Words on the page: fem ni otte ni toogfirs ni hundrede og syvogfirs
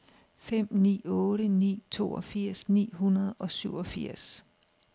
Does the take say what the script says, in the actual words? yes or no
yes